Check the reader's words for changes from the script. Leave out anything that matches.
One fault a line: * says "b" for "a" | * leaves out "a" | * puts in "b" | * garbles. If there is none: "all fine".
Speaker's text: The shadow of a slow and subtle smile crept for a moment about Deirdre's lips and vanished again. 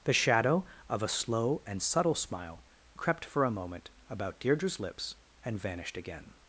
all fine